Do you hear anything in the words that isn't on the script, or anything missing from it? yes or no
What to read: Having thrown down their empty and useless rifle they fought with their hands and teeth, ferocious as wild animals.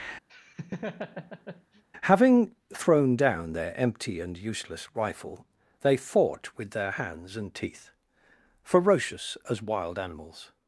no